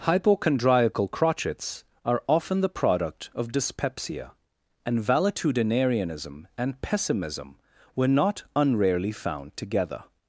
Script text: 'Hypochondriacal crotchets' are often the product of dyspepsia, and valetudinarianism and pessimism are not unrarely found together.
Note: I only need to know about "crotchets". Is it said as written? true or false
true